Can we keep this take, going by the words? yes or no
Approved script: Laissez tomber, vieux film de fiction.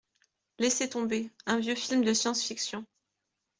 no